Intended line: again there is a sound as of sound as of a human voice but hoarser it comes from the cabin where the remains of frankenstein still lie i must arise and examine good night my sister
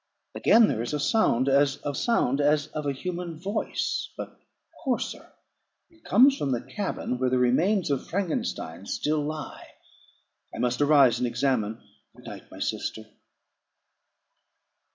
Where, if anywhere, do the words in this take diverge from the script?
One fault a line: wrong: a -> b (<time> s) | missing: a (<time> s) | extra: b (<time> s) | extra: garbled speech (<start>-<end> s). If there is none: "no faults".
no faults